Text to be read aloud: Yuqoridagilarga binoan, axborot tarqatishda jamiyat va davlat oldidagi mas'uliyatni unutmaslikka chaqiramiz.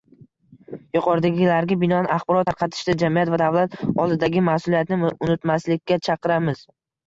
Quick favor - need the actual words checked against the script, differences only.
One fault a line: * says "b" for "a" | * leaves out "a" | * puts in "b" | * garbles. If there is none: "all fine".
all fine